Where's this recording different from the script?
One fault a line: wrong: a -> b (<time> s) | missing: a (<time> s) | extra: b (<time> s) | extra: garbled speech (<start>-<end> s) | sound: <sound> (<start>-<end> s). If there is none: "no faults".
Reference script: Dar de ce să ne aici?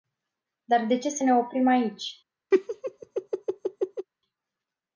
extra: oprim (1.3 s)
sound: laugh (2.5-4.1 s)